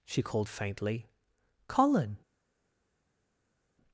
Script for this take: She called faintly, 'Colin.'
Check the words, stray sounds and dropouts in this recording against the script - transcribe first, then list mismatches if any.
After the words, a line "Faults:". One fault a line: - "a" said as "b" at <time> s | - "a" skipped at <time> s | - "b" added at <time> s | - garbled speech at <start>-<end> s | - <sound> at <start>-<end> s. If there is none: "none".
She called faintly, 'Colin.'
Faults:
none